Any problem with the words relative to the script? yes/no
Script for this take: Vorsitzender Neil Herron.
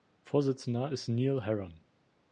yes